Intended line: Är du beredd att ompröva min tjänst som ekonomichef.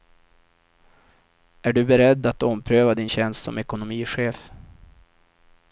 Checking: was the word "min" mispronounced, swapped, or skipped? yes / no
yes